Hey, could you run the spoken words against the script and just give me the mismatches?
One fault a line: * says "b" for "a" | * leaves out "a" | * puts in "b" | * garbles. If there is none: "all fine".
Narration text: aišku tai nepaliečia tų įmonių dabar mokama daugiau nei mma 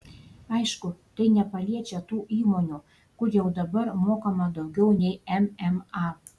* puts in "kur jau"